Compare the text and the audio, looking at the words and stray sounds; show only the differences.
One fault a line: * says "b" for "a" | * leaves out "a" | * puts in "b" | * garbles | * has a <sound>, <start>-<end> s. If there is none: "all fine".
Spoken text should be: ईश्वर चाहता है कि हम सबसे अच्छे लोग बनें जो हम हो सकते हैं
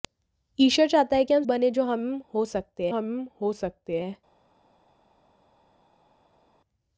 * says "बनें जो हम हो सकते" for "सबसे अच्छे लोग बनें जो"